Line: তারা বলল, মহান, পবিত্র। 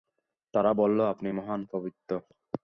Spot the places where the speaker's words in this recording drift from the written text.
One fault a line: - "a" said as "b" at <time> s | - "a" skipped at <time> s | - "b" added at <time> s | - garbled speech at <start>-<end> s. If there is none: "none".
- "আপনি" added at 1.0 s